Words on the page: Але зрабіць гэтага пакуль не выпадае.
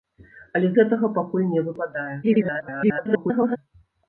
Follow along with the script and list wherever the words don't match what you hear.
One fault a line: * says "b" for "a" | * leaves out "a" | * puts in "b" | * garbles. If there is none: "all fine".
* leaves out "зрабіць"
* garbles